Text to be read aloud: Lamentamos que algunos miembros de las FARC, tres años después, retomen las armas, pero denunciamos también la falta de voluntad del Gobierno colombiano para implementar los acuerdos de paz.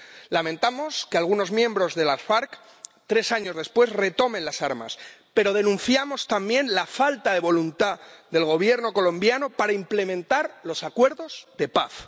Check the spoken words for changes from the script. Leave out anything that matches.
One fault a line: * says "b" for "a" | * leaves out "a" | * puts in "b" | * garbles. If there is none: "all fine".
all fine